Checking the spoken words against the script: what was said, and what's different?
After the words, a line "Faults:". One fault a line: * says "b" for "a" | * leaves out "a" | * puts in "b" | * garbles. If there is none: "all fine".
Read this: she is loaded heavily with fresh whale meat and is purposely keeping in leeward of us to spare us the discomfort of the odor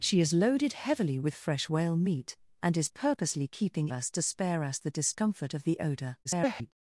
she is loaded heavily with fresh whale meat and is purposely keeping us to spare us the discomfort of the odor [garbled]
Faults:
* leaves out "in leeward of"
* garbles